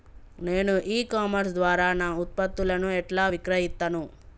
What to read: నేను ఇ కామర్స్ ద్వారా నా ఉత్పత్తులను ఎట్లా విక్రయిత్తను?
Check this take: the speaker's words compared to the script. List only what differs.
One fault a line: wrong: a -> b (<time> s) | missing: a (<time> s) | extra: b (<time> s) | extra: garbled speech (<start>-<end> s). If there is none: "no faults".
no faults